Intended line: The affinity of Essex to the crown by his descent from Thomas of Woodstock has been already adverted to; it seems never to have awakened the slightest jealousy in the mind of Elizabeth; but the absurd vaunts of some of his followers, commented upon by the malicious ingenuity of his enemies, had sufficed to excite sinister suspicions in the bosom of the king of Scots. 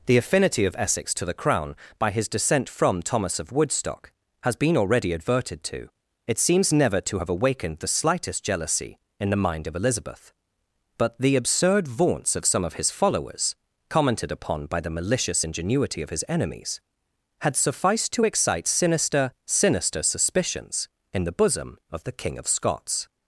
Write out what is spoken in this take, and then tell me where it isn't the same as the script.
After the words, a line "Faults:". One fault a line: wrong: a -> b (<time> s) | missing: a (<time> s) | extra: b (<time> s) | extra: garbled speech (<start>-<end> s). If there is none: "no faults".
The affinity of Essex to the crown by his descent from Thomas of Woodstock has been already adverted to; it seems never to have awakened the slightest jealousy in the mind of Elizabeth; but the absurd vaunts of some of his followers, commented upon by the malicious ingenuity of his enemies, had sufficed to excite sinister sinister suspicions in the bosom of the king of Scots.
Faults:
extra: sinister (19.5 s)